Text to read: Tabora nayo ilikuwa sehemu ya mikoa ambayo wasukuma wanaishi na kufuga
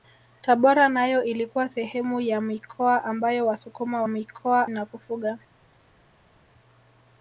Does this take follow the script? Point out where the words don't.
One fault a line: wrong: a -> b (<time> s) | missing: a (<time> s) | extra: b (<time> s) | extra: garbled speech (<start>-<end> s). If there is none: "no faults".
wrong: wanaishi -> mikoa (4.1 s)